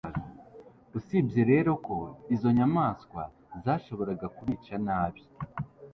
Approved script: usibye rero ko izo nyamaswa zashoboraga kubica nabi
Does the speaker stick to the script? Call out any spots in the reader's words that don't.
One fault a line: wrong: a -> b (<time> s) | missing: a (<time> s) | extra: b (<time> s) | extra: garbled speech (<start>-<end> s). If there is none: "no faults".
no faults